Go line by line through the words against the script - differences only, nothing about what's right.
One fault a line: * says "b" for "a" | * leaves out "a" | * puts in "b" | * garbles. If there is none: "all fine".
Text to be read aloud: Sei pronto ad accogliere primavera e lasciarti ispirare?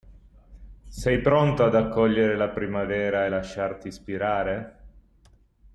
* puts in "la"